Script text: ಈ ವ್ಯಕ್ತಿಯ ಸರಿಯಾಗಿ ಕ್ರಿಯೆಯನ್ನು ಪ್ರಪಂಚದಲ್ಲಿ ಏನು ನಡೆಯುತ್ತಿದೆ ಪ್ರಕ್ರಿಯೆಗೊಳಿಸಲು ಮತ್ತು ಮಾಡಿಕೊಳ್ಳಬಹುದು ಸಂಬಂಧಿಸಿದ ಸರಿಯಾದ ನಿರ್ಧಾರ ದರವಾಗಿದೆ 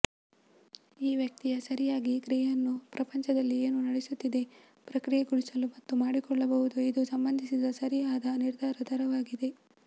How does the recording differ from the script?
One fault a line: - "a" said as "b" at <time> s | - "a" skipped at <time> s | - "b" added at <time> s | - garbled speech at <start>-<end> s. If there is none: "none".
- "ಇದು" added at 6.9 s